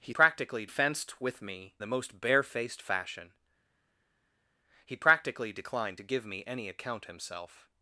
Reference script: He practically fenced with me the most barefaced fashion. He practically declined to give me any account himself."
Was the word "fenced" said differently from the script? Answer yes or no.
no